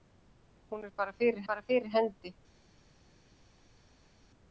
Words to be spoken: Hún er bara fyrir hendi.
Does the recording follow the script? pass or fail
fail